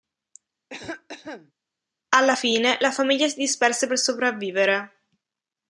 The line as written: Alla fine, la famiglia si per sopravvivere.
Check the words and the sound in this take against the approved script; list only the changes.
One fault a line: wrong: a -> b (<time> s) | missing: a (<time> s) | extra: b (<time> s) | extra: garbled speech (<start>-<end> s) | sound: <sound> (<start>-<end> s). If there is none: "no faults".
sound: cough (0.7-1.5 s)
extra: disperse (3.4 s)